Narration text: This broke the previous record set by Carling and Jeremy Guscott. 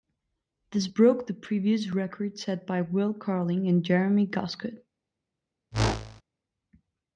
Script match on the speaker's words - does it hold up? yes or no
no